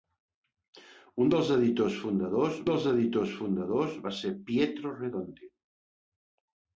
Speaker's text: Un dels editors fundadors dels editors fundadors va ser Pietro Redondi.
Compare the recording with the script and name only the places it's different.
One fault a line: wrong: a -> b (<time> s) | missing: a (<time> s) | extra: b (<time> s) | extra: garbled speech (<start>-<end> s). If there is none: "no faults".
no faults